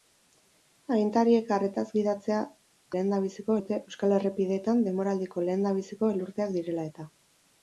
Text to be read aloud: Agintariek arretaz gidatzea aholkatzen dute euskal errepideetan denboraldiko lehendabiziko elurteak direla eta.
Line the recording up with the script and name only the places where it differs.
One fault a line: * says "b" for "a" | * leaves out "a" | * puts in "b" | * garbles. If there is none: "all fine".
* says "lehendabiziko" for "aholkatzen"